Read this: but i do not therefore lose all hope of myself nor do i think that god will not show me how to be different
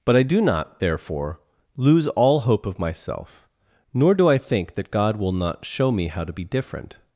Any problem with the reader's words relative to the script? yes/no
no